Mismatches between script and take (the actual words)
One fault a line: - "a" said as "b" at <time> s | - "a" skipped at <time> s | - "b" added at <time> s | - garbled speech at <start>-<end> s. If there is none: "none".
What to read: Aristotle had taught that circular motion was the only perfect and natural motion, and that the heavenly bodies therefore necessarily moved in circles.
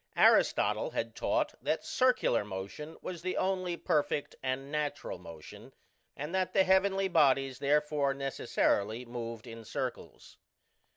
none